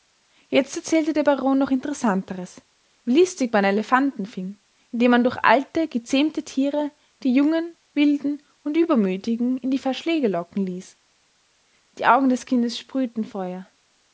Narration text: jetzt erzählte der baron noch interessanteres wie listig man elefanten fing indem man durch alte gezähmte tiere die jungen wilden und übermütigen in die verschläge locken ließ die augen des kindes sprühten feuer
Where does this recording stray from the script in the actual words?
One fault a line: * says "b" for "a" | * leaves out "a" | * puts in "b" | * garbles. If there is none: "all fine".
all fine